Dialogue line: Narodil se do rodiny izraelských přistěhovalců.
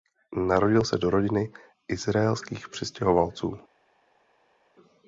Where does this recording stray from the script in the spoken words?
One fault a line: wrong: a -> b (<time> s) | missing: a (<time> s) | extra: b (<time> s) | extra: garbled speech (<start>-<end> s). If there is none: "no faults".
no faults